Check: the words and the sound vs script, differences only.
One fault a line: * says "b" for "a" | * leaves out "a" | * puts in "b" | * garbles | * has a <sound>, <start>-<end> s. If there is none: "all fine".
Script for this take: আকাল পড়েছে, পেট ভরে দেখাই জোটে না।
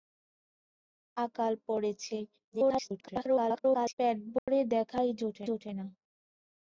* garbles
* has a dropout, 4.4-4.5 s
* puts in "জোটে"